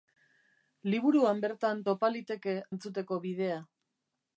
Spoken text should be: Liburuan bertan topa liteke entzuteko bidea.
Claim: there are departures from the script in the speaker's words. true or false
false